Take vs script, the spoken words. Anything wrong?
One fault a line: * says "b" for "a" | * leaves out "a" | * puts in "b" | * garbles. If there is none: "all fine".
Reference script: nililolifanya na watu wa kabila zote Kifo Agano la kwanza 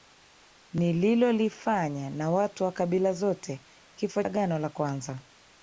all fine